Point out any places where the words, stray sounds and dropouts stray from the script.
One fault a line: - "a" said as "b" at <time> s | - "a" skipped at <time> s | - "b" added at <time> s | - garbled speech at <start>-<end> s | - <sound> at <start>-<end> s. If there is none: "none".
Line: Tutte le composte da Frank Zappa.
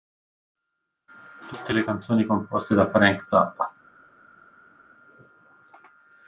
- "canzoni" added at 1.8 s